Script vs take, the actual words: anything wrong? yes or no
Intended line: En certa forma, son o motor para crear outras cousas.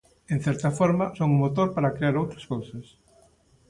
no